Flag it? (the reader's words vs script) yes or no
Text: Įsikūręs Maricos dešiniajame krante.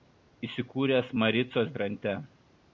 yes